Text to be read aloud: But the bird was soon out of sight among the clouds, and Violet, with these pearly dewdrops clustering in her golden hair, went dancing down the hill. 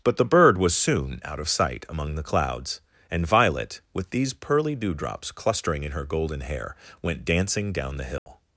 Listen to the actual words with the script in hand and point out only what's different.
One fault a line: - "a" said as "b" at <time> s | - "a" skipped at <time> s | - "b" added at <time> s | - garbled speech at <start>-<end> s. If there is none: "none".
none